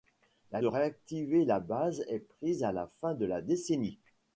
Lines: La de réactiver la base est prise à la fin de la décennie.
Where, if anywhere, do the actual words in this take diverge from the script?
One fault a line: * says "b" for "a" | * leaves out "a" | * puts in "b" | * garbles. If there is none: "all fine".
all fine